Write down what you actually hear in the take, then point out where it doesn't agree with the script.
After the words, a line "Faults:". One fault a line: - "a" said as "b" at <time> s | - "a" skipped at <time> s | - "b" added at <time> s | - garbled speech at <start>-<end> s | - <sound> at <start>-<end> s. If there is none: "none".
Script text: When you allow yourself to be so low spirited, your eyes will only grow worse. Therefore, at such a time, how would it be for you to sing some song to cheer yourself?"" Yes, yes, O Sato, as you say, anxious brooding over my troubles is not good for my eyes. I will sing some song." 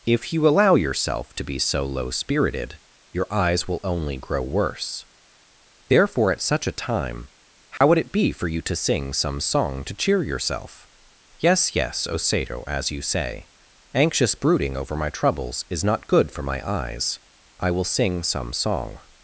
If you allow yourself to be so low spirited, your eyes will only grow worse. Therefore, at such a time, how would it be for you to sing some song to cheer yourself?"" Yes, yes, O Sato, as you say, anxious brooding over my troubles is not good for my eyes. I will sing some song."
Faults:
- "When" said as "If" at 0.1 s
- dropout at 7.8-7.8 s